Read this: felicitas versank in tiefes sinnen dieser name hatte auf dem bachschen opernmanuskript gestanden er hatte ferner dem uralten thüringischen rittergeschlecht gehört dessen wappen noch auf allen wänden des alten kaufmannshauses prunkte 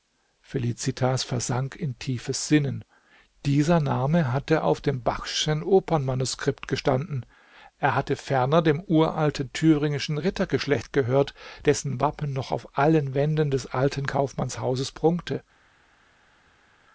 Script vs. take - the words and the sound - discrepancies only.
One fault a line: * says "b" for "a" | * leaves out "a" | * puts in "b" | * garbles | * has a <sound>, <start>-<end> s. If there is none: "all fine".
all fine